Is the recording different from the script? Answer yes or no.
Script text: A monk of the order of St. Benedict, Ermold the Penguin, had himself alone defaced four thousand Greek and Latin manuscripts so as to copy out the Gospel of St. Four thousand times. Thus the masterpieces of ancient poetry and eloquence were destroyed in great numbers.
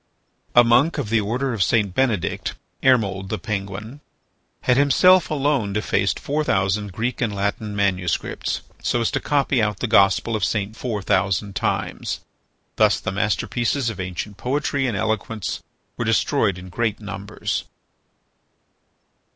no